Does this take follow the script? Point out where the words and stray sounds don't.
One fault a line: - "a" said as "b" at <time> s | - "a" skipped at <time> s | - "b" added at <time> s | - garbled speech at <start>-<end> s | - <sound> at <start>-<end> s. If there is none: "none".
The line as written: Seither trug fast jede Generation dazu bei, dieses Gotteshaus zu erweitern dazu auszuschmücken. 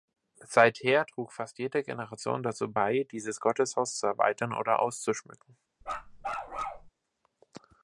- "dazu" said as "oder" at 4.5 s
- bark at 5.8-6.9 s